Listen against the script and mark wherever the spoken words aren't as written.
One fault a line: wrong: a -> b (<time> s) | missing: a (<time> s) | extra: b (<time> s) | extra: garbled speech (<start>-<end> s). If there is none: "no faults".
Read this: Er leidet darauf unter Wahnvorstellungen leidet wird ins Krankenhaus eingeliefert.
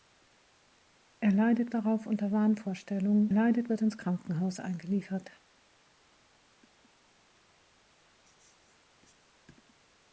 no faults